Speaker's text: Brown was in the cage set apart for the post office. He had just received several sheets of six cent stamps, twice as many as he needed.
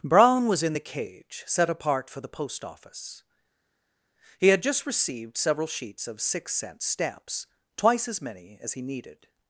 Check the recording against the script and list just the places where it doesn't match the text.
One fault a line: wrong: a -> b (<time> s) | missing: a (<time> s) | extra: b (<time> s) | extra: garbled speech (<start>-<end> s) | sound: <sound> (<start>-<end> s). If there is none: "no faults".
no faults